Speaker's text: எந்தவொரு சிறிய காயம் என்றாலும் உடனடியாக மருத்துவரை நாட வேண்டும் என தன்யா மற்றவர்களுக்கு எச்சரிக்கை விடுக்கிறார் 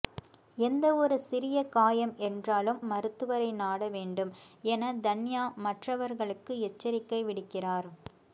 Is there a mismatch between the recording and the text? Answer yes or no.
yes